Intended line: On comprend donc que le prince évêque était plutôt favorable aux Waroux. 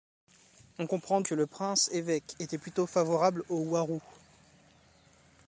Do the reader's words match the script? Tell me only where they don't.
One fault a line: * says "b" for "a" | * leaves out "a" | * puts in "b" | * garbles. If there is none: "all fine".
* leaves out "donc"